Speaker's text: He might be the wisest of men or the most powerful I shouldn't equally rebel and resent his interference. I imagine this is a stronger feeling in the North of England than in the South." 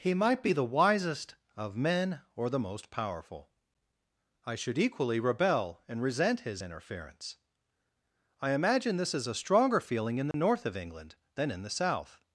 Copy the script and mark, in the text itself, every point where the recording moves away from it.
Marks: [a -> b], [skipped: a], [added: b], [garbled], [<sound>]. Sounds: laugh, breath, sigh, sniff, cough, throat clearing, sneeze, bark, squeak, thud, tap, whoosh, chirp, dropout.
He might be the wisest of men or the most powerful I [shouldn't -> should] equally rebel and resent his interference. I imagine this is a stronger feeling in the [dropout] North of England than in the South."